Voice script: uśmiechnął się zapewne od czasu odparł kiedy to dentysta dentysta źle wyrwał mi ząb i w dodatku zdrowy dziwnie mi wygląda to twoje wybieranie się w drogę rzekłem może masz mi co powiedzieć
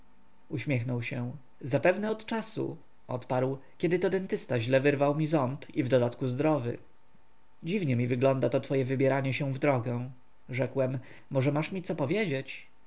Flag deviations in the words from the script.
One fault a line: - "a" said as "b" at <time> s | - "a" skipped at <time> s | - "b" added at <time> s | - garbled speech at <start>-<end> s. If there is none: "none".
- "dentysta" skipped at 4.6 s